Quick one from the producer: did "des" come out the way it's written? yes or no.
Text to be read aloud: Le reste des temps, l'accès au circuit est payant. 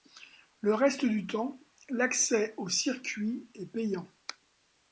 no